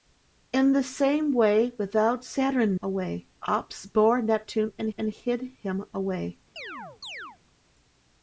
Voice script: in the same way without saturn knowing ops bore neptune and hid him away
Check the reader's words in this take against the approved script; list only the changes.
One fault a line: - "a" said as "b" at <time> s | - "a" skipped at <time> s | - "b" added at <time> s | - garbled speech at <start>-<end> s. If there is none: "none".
- "knowing" said as "away" at 2.8 s
- "and" added at 5.0 s